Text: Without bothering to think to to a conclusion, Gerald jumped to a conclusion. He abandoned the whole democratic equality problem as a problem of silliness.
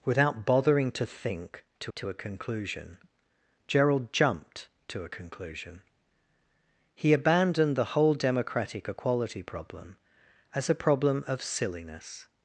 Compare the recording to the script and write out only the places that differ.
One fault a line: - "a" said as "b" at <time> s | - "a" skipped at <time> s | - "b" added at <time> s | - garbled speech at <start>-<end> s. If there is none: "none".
none